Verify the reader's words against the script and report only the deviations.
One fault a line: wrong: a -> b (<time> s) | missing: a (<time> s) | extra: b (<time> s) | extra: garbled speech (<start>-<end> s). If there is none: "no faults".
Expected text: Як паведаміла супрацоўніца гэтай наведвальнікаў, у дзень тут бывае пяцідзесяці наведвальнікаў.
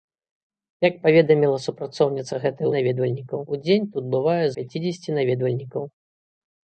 no faults